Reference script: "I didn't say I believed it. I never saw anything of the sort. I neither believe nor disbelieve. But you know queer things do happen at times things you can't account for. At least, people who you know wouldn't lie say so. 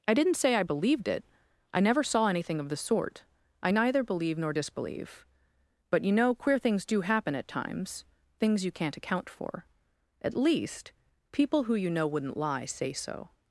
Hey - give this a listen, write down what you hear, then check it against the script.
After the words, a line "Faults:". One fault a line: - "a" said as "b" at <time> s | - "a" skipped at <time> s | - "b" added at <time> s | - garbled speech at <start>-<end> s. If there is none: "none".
"I didn't say I believed it. I never saw anything of the sort. I neither believe nor disbelieve. But you know queer things do happen at times things you can't account for. At least, people who you know wouldn't lie say so.
Faults:
none